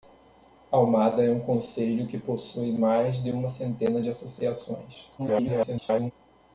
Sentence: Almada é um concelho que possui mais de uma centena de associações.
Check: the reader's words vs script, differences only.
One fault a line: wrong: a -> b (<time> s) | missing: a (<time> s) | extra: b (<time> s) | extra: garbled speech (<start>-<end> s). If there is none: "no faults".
extra: garbled speech (5.2-6.1 s)